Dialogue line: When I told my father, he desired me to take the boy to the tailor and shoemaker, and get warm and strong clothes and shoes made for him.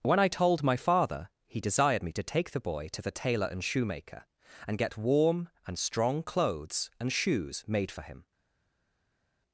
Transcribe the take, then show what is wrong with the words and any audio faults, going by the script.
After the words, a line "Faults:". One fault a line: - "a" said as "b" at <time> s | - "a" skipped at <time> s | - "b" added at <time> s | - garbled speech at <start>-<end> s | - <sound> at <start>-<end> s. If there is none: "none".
When I told my father, he desired me to take the boy to the tailor and shoemaker, and get warm and strong clothes and shoes made for him.
Faults:
none